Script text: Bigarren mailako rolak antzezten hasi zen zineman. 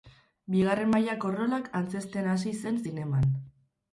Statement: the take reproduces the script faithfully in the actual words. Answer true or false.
true